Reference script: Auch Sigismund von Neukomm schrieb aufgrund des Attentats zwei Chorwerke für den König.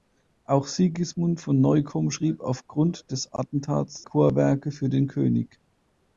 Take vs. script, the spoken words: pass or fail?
fail